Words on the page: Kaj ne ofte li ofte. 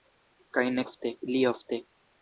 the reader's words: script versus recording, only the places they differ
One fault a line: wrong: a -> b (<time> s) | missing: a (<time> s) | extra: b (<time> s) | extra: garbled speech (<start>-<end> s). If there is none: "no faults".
no faults